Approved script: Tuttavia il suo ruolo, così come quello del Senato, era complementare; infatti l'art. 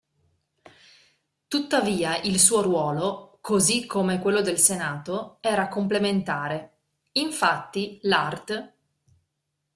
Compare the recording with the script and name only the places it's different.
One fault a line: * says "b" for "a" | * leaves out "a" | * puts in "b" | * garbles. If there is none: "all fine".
all fine